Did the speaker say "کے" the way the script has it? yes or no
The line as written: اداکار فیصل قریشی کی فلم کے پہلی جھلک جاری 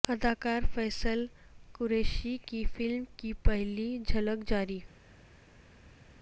no